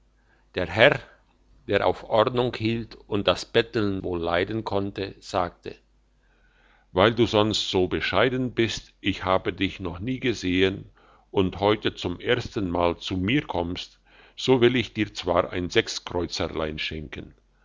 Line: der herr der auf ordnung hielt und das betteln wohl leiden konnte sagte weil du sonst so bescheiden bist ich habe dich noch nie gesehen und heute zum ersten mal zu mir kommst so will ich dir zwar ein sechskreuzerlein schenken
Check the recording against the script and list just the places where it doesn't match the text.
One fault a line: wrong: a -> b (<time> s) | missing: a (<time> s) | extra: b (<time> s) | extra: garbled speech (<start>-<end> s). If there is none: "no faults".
no faults